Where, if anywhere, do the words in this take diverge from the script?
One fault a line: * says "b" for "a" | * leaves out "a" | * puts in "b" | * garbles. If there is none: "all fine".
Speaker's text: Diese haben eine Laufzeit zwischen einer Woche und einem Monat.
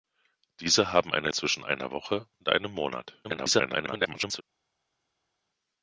* leaves out "Laufzeit"
* garbles